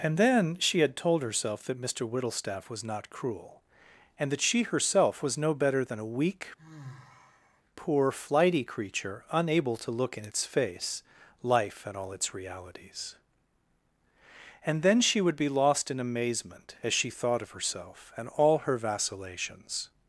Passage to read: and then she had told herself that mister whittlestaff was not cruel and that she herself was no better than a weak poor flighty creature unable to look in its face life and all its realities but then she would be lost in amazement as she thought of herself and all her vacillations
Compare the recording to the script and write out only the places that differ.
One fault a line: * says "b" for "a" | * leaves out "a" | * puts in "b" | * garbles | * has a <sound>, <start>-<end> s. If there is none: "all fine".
* has a sigh, 6.6-7.6 s
* says "and" for "but"